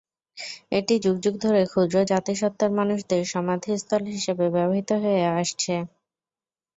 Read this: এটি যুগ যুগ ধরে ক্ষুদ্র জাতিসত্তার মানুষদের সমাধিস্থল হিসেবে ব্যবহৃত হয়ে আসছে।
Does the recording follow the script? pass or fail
pass